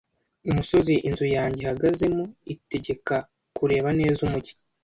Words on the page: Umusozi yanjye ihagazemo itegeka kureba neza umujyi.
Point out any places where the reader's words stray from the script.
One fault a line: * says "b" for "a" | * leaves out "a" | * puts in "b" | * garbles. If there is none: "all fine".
* puts in "inzu"